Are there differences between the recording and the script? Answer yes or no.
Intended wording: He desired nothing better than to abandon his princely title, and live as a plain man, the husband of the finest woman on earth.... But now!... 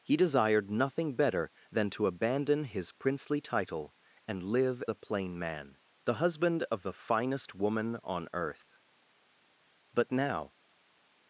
yes